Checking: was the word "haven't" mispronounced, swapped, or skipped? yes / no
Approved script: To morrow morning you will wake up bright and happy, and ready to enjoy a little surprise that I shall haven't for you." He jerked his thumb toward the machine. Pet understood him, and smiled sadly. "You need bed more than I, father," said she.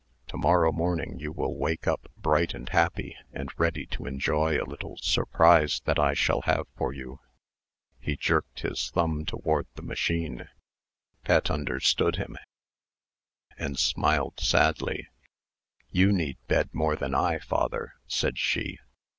yes